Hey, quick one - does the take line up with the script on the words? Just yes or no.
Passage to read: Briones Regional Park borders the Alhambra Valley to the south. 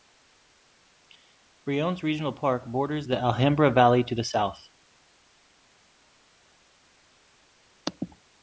yes